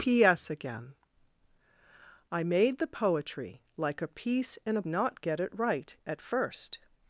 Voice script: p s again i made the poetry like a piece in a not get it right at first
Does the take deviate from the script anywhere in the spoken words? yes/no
no